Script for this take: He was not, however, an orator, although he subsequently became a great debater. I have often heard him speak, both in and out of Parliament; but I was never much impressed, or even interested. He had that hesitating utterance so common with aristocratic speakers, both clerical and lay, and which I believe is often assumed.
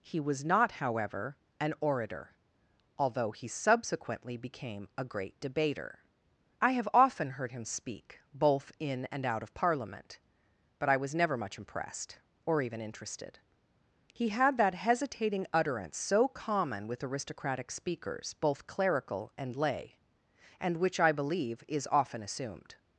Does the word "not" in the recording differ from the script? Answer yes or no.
no